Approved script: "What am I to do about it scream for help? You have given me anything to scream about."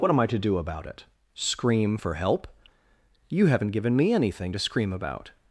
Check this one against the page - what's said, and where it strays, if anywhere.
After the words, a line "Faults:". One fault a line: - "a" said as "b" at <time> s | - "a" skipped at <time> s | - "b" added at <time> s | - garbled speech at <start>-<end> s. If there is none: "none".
"What am I to do about it scream for help? You haven't given me anything to scream about."
Faults:
- "have" said as "haven't" at 3.5 s